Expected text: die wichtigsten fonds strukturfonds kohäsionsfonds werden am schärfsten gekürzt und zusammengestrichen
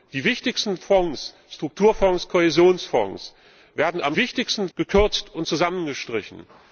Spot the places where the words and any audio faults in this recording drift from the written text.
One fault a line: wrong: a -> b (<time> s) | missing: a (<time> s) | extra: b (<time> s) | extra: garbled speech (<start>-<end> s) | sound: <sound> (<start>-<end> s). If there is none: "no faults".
wrong: schärfsten -> wichtigsten (4.2 s)